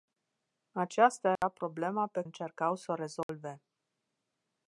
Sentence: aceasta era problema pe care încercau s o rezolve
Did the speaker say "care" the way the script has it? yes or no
no